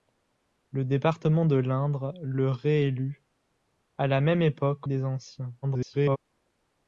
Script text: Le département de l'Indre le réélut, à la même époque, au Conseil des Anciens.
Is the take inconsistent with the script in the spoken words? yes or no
yes